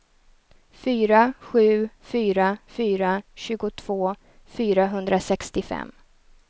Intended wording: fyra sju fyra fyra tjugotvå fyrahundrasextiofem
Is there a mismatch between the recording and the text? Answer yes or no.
no